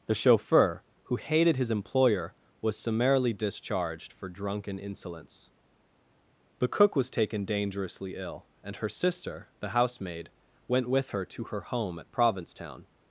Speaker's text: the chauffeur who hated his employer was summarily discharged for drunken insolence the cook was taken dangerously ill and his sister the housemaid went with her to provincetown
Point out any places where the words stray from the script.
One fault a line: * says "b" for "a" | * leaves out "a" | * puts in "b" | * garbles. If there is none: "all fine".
* says "her" for "his"
* puts in "her home at"